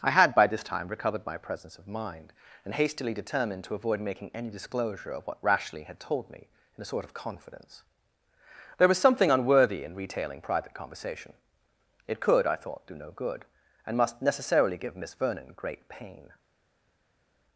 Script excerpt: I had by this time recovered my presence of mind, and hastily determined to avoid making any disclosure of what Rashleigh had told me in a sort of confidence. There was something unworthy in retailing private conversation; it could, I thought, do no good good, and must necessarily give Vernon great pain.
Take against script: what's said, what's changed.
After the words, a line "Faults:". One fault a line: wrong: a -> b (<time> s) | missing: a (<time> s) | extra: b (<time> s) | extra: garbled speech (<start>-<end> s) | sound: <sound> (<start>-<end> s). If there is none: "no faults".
I had by this time recovered my presence of mind, and hastily determined to avoid making any disclosure of what Rashleigh had told me in a sort of confidence. There was something unworthy in retailing private conversation; it could, I thought, do no good, and must necessarily give Miss Vernon great pain.
Faults:
missing: good (13.4 s)
extra: Miss (15.0 s)